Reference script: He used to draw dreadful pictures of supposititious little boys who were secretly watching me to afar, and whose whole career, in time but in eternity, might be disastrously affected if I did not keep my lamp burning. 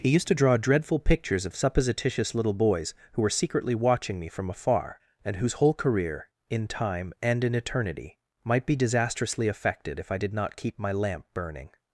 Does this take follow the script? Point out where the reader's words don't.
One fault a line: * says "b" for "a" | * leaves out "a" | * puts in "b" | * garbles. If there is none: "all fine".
* says "from" for "to"
* says "and" for "but"